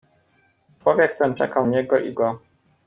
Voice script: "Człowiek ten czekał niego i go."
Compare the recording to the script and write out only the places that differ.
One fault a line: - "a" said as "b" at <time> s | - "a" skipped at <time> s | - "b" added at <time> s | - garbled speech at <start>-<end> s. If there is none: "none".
none